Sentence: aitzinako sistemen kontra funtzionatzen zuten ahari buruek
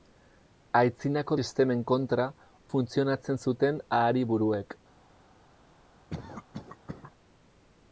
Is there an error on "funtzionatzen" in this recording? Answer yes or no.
no